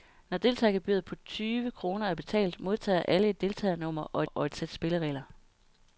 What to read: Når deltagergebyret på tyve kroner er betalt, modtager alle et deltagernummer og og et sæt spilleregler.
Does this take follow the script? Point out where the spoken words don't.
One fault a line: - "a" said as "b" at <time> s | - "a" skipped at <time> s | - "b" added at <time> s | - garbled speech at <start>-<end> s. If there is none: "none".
none